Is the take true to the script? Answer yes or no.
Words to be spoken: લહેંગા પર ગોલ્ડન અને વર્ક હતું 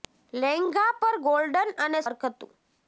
yes